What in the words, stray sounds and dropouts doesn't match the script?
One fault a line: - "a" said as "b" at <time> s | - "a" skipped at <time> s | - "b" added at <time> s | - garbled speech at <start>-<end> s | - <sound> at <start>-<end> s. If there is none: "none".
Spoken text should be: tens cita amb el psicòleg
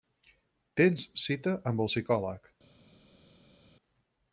none